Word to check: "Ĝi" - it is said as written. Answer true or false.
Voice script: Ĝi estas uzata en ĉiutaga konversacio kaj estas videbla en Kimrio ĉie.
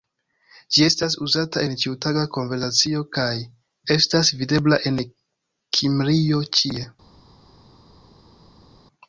true